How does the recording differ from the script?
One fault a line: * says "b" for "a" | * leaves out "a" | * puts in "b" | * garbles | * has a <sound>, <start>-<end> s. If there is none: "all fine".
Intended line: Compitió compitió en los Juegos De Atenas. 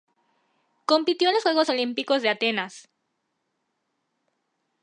* leaves out "compitió"
* puts in "Olímpicos"